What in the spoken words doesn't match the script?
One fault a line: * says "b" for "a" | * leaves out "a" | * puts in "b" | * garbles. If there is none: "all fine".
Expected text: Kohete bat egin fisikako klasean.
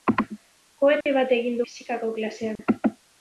all fine